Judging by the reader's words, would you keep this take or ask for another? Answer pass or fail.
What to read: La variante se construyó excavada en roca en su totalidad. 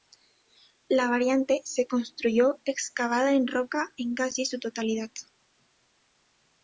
fail